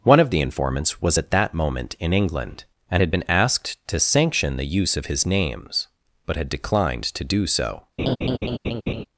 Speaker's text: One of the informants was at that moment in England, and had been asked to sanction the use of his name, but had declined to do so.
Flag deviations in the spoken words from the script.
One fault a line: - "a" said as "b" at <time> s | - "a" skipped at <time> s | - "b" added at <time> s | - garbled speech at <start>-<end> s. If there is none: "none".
- "name" said as "names" at 5.3 s